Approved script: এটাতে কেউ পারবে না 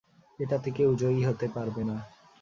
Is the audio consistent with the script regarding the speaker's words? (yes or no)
no